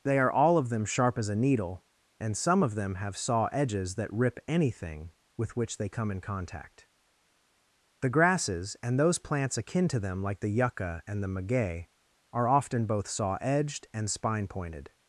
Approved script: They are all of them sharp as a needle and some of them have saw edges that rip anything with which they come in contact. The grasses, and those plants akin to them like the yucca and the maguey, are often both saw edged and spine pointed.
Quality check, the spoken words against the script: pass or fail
pass